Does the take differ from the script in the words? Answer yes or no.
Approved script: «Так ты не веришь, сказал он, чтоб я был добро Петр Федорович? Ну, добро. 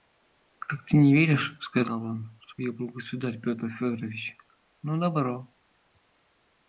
yes